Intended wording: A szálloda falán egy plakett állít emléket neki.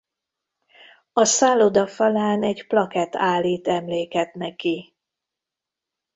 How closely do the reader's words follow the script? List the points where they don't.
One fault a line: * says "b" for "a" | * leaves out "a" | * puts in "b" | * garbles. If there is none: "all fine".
all fine